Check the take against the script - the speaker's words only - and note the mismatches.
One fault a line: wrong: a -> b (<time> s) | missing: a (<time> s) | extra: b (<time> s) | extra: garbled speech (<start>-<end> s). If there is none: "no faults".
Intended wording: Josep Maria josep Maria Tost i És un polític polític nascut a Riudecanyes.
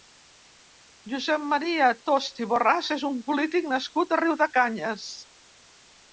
missing: josep Maria (1.9 s)
extra: Borràs (2.5 s)
missing: polític (3.7 s)